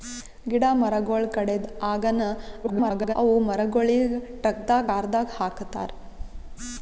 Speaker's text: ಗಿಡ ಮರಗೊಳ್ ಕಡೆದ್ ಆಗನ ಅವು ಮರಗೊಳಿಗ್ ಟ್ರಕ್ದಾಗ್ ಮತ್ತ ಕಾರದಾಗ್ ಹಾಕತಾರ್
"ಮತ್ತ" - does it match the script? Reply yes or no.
no